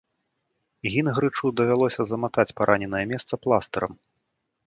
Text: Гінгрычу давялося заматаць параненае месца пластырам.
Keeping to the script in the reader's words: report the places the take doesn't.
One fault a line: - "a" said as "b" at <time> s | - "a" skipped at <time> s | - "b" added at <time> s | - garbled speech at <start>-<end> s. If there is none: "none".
none